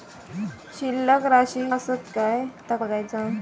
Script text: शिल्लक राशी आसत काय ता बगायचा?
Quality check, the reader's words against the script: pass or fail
pass